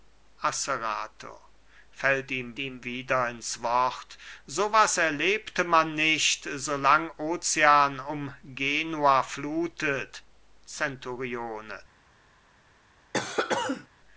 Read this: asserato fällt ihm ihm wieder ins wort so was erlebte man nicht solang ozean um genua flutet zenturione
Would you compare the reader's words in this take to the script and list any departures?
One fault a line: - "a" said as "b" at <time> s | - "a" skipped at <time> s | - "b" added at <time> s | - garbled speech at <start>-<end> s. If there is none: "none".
none